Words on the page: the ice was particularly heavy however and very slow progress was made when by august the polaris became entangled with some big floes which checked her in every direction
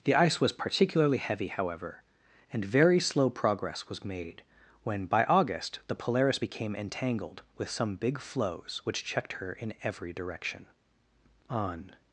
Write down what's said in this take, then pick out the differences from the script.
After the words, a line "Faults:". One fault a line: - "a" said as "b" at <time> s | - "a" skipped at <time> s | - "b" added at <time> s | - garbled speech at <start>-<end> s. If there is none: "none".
the ice was particularly heavy however and very slow progress was made when by august the polaris became entangled with some big floes which checked her in every direction on
Faults:
- "on" added at 11.5 s